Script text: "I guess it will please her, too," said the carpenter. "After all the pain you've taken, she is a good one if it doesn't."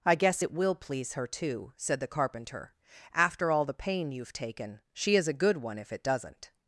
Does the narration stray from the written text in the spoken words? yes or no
no